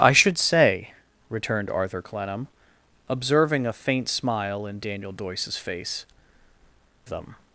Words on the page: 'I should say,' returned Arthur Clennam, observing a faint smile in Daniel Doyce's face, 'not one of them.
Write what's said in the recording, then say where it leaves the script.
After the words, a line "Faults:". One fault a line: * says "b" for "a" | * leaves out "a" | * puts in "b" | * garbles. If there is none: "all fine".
'I should say,' returned Arthur Clennam, observing a faint smile in Daniel Doyce's face, 'them.
Faults:
* leaves out "not one of"